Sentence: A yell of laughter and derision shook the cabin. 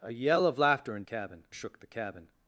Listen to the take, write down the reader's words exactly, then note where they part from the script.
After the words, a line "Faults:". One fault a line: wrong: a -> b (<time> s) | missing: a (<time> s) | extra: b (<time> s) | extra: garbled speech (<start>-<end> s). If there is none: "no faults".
A yell of laughter and cabin shook the cabin.
Faults:
wrong: derision -> cabin (1.0 s)